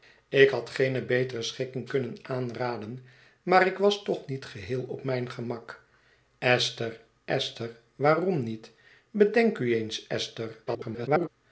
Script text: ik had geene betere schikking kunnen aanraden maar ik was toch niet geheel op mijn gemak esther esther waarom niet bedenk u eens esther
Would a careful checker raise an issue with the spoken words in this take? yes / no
yes